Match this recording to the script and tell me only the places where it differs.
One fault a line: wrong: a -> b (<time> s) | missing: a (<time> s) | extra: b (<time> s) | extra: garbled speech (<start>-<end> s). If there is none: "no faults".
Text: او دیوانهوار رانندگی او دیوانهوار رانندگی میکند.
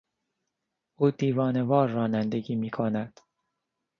missing: او دیوانهوار رانندگی (2.5 s)